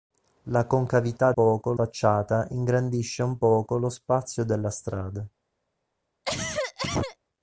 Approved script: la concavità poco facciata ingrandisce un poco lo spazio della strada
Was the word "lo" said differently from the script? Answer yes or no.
no